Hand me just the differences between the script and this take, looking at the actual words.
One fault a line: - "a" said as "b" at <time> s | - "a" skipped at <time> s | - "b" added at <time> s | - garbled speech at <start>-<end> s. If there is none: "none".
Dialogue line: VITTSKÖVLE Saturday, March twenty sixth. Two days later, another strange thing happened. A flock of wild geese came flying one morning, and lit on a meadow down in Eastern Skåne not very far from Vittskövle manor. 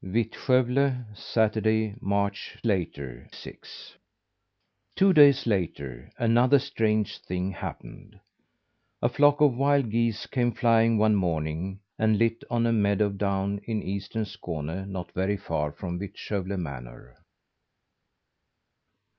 - "twenty" said as "later" at 2.6 s